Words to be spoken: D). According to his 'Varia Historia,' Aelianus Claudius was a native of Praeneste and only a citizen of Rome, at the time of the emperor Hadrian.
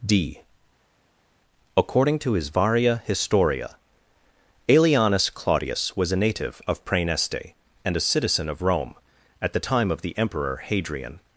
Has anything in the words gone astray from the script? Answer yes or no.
yes